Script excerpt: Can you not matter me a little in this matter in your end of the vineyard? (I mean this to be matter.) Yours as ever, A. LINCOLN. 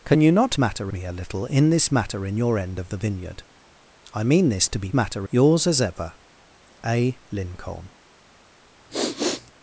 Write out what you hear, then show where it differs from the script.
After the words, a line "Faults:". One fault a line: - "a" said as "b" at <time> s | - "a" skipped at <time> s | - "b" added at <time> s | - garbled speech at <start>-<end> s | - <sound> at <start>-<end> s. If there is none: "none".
Can you not matter me a little in this matter in your end of the vineyard? (I mean this to be matter.) Yours as ever, A. LINCOLN.
Faults:
- sniff at 8.9-9.5 s